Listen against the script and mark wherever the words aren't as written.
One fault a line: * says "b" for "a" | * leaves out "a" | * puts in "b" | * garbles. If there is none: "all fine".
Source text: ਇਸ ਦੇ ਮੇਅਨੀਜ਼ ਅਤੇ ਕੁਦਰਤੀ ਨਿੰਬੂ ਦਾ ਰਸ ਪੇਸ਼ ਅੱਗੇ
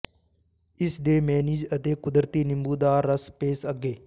all fine